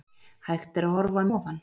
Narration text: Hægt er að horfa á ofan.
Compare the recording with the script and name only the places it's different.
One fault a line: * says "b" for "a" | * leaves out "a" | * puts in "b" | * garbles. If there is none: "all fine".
all fine